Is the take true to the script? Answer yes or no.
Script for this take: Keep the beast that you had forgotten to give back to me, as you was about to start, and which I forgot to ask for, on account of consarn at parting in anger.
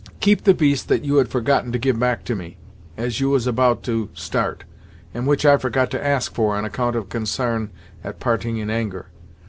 yes